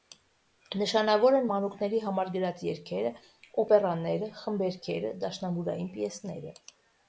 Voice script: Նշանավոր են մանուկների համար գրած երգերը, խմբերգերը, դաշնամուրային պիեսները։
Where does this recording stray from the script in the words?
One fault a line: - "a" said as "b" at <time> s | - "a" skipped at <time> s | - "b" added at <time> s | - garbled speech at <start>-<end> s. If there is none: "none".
- "օպերաները" added at 3.7 s